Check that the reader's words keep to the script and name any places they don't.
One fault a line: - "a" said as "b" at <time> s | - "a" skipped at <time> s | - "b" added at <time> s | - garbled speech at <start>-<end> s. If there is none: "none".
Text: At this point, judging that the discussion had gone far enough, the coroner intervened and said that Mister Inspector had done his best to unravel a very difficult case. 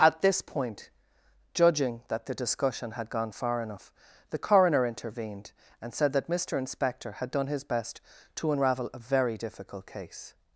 none